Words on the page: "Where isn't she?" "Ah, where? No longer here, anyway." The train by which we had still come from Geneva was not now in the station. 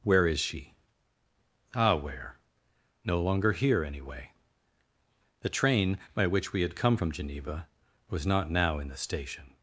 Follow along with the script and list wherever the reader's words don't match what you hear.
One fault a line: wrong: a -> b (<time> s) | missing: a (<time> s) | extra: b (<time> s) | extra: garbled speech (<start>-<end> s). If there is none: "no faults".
wrong: isn't -> is (0.3 s)
missing: still (6.8 s)